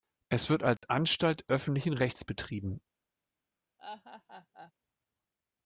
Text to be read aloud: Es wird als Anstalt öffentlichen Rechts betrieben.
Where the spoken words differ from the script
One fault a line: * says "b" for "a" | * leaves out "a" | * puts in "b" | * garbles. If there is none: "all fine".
all fine